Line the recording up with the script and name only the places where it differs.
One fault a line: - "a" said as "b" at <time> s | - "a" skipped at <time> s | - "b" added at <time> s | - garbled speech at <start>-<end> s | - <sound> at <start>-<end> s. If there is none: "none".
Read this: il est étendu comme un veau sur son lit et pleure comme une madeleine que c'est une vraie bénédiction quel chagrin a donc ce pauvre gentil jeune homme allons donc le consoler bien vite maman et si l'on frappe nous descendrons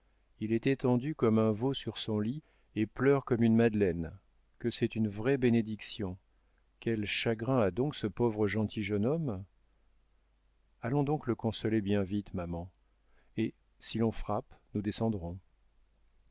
none